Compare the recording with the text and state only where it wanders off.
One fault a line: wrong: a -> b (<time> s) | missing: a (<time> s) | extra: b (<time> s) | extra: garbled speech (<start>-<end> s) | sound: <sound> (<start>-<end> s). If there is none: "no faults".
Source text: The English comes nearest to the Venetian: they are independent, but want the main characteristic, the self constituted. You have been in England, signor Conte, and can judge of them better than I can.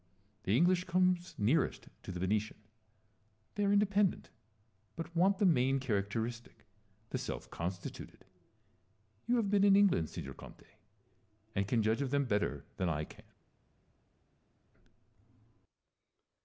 no faults